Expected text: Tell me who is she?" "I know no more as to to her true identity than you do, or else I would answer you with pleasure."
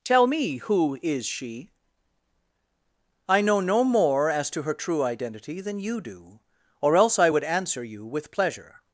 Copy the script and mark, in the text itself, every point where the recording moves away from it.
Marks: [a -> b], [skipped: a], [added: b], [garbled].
Tell me who is she?" "I know no more as to [skipped: to] her true identity than you do, or else I would answer you with pleasure."